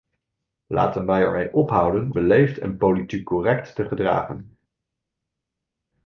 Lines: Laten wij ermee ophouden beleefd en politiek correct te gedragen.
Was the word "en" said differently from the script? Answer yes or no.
no